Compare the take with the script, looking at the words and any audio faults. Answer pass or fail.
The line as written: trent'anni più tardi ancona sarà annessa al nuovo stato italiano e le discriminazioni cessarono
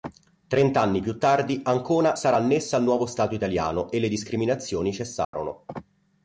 fail